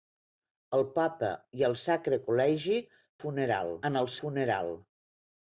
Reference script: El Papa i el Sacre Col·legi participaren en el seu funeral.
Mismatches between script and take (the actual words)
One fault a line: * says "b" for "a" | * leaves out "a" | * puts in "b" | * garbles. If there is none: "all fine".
* says "funeral" for "participaren"
* leaves out "seu"